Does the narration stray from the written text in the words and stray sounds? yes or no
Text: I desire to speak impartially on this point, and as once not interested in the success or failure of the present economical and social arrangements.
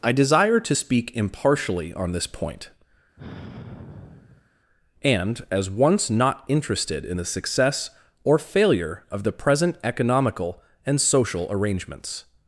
yes